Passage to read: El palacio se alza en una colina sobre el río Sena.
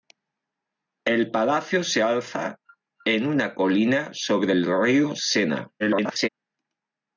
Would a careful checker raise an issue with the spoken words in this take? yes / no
yes